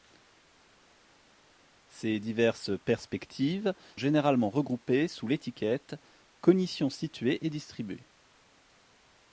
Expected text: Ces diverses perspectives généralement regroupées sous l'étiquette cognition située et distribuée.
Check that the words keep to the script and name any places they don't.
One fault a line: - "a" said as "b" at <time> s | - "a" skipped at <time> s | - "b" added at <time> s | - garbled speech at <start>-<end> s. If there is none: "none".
none